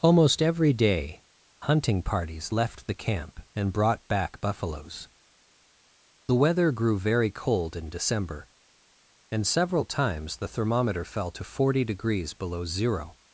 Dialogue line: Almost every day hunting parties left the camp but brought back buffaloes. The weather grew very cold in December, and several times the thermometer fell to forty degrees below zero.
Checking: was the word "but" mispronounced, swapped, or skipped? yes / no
yes